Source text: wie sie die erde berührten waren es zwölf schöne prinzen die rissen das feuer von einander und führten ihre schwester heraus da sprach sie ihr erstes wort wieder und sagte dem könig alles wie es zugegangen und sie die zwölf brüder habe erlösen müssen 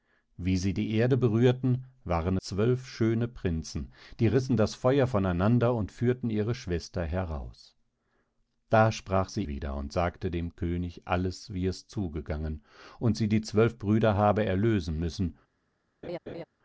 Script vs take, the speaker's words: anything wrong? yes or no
yes